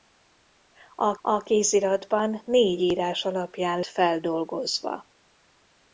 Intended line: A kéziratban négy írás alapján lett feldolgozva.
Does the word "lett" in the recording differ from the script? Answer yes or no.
yes